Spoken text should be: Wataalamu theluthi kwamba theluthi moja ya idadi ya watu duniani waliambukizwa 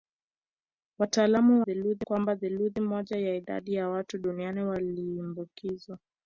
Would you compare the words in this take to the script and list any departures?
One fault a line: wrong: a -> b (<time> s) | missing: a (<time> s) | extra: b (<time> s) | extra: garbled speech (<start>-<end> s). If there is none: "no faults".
no faults